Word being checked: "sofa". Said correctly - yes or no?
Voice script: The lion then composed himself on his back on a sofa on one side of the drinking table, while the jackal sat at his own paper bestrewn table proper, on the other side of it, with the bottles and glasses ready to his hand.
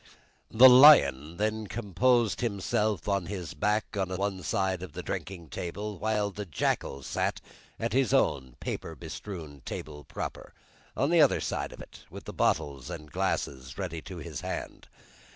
no